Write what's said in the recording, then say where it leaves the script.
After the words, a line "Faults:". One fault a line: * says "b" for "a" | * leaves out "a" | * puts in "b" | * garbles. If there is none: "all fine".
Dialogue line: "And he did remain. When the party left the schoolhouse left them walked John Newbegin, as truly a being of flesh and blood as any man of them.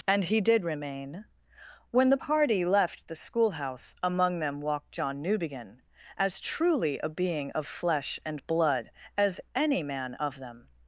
"And he did remain. When the party left the schoolhouse among them walked John Newbegin, as truly a being of flesh and blood as any man of them.
Faults:
* says "among" for "left"